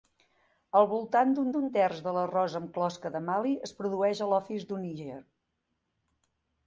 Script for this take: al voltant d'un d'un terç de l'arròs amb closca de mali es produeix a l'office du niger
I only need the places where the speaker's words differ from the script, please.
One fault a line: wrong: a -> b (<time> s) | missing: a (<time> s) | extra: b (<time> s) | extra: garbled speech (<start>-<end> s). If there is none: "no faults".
no faults